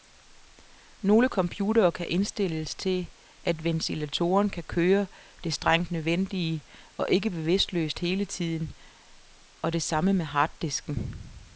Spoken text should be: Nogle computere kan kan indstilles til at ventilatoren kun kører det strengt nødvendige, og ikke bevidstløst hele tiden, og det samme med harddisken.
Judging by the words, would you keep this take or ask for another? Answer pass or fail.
fail